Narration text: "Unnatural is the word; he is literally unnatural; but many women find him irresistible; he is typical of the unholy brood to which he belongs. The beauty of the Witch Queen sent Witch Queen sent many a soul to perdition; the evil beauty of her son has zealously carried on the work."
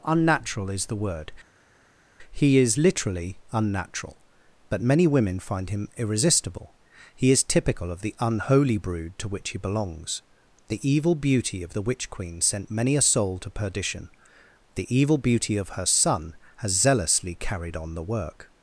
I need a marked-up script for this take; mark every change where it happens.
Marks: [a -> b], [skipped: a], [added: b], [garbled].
"Unnatural is the word; he is literally unnatural; but many women find him irresistible; he is typical of the unholy brood to which he belongs. The [added: evil] beauty of the Witch Queen sent [skipped: Witch Queen sent] many a soul to perdition; the evil beauty of her son has zealously carried on the work."